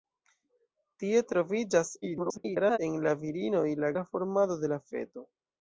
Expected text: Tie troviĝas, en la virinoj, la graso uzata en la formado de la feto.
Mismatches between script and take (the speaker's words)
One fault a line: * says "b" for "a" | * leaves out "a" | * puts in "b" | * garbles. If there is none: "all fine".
* garbles
* leaves out "graso uzata en"